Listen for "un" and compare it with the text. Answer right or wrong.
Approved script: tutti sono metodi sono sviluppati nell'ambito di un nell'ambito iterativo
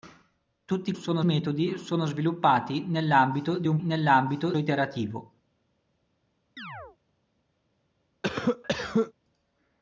right